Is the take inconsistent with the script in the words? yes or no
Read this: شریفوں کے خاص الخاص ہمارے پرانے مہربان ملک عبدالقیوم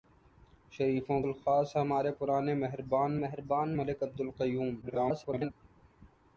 yes